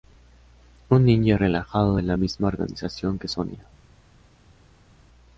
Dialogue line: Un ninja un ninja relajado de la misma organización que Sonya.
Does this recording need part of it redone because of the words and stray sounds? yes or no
yes